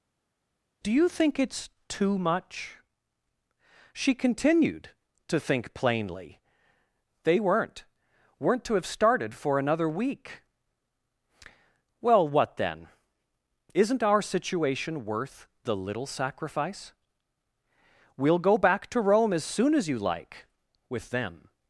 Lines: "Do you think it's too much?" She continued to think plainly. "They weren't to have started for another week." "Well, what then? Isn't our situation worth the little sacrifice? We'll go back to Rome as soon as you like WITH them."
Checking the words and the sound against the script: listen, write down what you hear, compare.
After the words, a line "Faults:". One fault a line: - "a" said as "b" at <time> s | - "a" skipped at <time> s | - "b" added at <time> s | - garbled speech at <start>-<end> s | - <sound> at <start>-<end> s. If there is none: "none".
"Do you think it's too much?" She continued to think plainly. "They weren't weren't to have started for another week." "Well, what then? Isn't our situation worth the little sacrifice? We'll go back to Rome as soon as you like WITH them."
Faults:
- "weren't" added at 8.4 s